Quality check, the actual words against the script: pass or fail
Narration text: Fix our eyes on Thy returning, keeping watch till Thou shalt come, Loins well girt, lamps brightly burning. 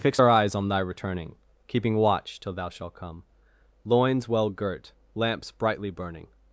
pass